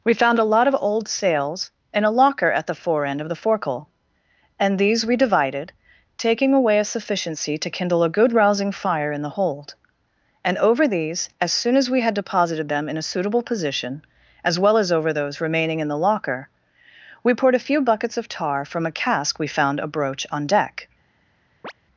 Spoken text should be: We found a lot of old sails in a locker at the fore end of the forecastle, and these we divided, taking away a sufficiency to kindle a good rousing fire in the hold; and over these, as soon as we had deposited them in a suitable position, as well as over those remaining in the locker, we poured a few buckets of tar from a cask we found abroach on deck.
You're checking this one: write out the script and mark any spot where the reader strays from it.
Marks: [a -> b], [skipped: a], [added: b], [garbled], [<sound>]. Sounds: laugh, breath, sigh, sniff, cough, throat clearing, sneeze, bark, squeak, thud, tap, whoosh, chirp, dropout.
We found a lot of old sails in a locker at the fore end of the forecastle, and these we divided, taking away a sufficiency to kindle a good rousing fire in the hold; and over these, as soon as we had deposited them in a suitable position, as well as over those remaining in the locker, we poured a few buckets of tar from a cask we found abroach on deck. [chirp]